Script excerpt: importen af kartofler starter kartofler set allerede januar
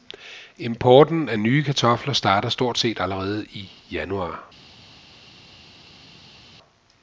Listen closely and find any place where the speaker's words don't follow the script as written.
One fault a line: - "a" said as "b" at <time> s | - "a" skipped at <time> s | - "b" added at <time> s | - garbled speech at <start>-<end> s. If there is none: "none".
- "nye" added at 1.4 s
- "kartofler" said as "stort" at 2.5 s
- "i" added at 3.4 s